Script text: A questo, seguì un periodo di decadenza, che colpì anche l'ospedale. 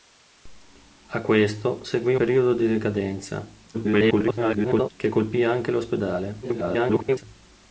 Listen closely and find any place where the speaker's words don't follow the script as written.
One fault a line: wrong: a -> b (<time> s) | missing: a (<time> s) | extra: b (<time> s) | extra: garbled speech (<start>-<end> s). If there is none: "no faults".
missing: un (2.1 s)
extra: garbled speech (3.7-4.9 s)
extra: garbled speech (6.4-7.2 s)